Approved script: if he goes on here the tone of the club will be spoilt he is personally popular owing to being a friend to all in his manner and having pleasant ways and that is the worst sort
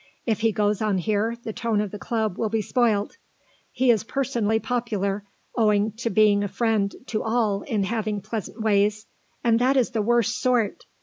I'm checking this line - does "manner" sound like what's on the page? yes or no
no